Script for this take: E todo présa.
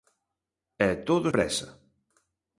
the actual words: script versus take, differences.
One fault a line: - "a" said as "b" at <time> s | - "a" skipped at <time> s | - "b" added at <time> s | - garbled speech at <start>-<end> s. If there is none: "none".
none